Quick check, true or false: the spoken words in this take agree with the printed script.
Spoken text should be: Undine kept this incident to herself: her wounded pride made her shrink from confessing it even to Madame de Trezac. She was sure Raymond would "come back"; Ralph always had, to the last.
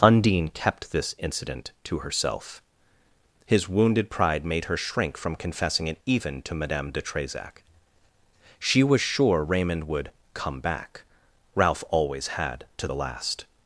false